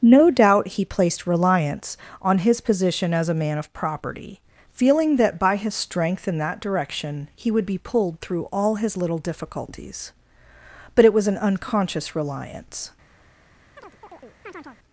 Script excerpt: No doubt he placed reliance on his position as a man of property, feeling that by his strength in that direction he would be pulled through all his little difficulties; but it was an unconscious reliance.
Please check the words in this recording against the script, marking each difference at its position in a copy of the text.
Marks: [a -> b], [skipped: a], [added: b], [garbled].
No doubt he placed reliance on his position as a man of property, feeling that by his strength in that direction he would be pulled through all his little difficulties; but it was an unconscious reliance.